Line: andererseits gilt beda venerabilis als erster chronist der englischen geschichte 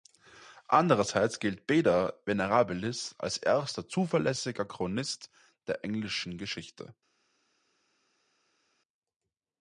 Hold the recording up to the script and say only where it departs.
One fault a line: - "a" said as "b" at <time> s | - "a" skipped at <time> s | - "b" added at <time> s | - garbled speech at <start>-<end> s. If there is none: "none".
- "zuverlässiger" added at 3.9 s